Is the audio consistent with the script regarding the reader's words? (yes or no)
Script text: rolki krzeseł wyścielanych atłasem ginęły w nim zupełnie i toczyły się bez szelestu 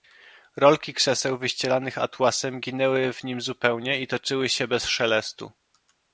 yes